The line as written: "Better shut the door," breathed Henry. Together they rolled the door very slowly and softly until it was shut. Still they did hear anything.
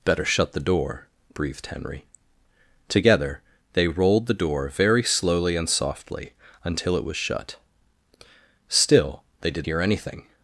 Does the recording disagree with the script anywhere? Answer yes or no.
no